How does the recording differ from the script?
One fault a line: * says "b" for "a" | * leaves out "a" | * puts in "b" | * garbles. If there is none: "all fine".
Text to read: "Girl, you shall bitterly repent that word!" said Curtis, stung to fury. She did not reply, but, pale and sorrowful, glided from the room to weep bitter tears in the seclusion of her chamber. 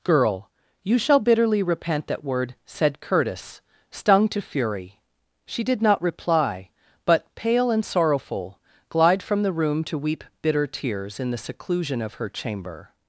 * says "glide" for "glided"